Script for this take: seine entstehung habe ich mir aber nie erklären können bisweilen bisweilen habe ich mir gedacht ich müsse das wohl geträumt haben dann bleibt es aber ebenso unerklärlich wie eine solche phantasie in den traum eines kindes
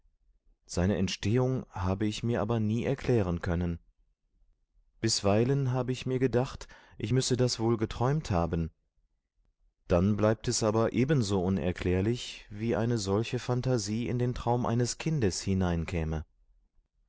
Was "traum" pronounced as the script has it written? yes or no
yes